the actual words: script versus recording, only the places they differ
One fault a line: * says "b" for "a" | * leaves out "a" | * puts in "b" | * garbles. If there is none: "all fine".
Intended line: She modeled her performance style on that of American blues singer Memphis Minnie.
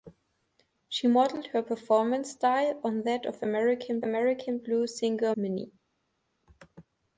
* puts in "American"
* leaves out "Memphis"